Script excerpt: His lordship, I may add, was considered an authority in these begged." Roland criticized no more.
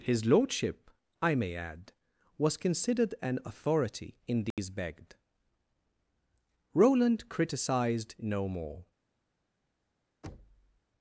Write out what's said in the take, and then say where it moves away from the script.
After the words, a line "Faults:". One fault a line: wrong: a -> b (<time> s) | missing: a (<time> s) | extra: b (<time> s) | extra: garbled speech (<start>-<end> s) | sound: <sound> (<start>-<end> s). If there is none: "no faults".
His lordship, I may add, was considered an authority in these begged." Roland criticized no more.
Faults:
sound: dropout (4.5-4.6 s)
sound: thud (10.2-10.8 s)